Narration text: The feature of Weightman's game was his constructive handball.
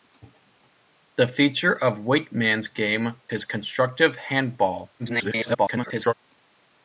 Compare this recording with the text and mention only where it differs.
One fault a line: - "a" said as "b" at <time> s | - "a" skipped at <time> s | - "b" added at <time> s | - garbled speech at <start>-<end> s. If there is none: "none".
- "was" skipped at 3.2 s
- garbled speech at 5.0-6.1 s